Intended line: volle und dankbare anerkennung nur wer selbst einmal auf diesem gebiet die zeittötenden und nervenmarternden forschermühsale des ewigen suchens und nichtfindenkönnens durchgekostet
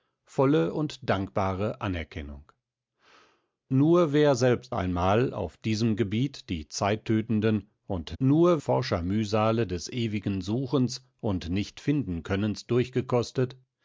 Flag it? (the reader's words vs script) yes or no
yes